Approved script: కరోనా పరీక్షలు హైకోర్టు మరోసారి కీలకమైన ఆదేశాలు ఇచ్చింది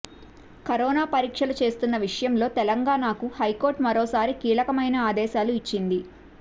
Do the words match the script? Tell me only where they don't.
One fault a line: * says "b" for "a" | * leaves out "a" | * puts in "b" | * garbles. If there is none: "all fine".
* puts in "చేస్తున్న విషయంలో తెలంగాణకు"